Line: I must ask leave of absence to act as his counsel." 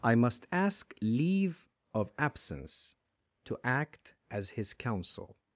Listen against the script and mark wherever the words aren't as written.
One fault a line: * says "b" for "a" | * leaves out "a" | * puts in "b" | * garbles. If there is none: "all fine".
all fine